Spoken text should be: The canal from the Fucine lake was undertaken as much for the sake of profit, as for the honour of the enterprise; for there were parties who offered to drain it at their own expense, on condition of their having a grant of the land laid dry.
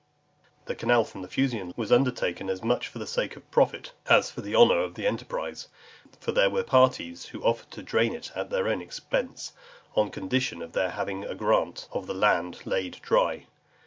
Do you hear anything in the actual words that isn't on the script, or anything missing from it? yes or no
yes